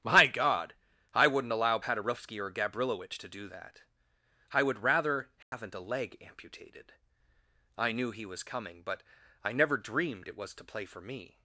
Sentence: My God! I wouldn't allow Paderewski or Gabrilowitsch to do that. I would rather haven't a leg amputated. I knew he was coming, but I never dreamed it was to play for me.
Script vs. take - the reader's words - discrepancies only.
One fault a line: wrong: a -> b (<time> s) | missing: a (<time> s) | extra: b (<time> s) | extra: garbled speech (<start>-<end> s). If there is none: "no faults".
no faults